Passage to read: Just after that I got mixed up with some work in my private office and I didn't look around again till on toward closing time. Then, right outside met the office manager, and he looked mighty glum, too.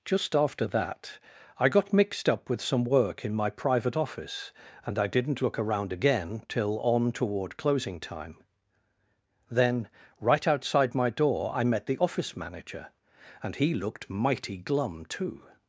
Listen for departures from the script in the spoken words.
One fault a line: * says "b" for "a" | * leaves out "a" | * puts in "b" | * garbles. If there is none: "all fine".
* puts in "my door I"